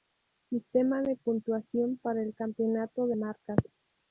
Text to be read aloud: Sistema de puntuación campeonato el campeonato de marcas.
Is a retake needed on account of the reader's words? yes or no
yes